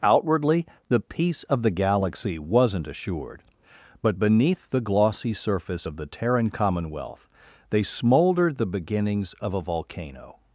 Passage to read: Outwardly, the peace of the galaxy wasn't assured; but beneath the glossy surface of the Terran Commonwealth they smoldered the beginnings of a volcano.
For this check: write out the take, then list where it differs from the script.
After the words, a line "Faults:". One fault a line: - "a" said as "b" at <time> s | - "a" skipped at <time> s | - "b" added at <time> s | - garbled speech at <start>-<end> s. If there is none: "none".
Outwardly, the peace of the galaxy wasn't assured; but beneath the glossy surface of the Terran Commonwealth they smoldered the beginnings of a volcano.
Faults:
none